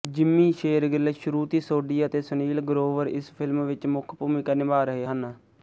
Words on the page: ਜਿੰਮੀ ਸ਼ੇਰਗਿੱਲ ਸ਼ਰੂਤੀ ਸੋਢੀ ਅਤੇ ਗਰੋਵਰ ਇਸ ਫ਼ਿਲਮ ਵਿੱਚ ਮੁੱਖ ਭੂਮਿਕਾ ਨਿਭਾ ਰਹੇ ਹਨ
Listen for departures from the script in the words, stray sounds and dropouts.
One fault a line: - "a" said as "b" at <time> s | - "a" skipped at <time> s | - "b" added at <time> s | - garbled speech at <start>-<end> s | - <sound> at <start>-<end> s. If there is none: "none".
- "ਸੁਨੀਲ" added at 2.2 s